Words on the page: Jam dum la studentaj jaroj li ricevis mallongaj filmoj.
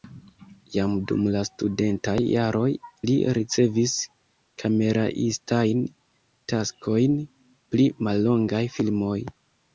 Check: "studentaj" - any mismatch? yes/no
no